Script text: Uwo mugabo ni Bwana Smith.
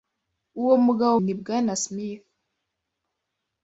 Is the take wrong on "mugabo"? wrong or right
right